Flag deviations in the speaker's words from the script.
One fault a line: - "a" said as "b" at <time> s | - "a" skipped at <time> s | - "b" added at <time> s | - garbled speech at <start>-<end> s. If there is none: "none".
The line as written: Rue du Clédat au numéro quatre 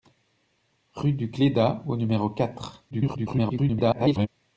- garbled speech at 2.9-4.3 s